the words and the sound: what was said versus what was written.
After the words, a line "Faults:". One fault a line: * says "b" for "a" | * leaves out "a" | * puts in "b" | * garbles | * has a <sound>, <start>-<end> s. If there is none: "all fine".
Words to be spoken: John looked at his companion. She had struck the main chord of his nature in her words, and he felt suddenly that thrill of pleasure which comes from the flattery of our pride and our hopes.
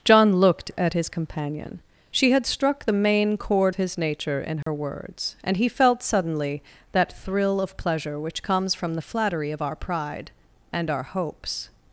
John looked at his companion. She had struck the main chord his nature in her words, and he felt suddenly that thrill of pleasure which comes from the flattery of our pride and our hopes.
Faults:
* leaves out "of"
* has a dropout, 4.6-4.7 s